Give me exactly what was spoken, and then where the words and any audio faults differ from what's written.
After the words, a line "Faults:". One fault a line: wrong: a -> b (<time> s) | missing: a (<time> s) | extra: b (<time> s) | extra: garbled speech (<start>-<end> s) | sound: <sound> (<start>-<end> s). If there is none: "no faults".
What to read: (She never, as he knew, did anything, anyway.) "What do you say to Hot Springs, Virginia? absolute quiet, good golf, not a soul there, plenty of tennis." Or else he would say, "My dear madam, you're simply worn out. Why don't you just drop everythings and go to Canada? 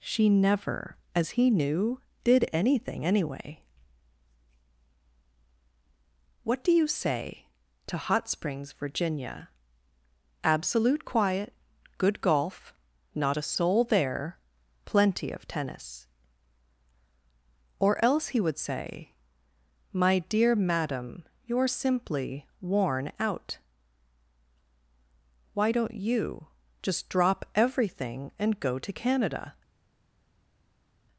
(She never, as he knew, did anything, anyway.) "What do you say to Hot Springs, Virginia? absolute quiet, good golf, not a soul there, plenty of tennis." Or else he would say, "My dear madam, you're simply worn out. Why don't you just drop everything and go to Canada?
Faults:
wrong: everythings -> everything (27.5 s)